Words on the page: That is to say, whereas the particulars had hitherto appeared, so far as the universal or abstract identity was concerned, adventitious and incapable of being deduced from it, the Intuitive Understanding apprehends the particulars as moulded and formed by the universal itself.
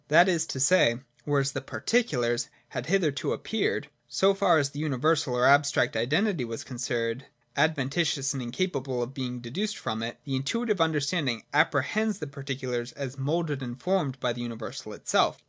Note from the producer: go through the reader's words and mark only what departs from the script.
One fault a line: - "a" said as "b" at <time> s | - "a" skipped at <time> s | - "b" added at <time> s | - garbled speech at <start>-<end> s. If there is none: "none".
none